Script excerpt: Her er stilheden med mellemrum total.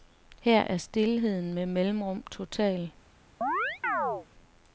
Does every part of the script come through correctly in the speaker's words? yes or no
yes